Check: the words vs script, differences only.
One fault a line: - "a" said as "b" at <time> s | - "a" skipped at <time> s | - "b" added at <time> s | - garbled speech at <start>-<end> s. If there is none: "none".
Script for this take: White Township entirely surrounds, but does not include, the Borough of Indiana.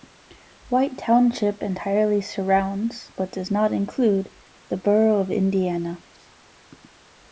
none